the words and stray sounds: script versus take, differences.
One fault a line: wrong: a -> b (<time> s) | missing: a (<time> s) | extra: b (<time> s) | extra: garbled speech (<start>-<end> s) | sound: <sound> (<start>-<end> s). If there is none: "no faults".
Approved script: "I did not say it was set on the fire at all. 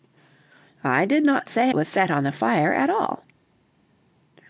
missing: it (1.7 s)